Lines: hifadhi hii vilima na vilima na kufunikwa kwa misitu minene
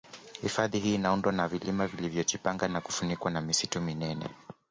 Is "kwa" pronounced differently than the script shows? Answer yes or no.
yes